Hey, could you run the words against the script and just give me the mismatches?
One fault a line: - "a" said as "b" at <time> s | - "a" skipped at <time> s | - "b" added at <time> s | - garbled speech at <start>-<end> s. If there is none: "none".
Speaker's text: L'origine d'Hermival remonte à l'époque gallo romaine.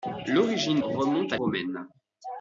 - "d'Hermival" skipped at 0.8 s
- "l'époque gallo" skipped at 1.4 s